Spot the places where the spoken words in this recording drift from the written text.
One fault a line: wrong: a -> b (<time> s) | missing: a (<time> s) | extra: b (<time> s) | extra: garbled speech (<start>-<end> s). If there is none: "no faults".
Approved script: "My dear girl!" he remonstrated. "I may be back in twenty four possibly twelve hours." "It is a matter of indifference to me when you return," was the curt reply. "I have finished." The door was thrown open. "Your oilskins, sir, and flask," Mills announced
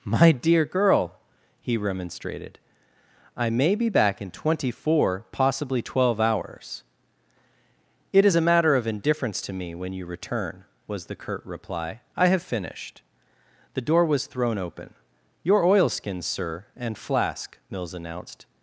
no faults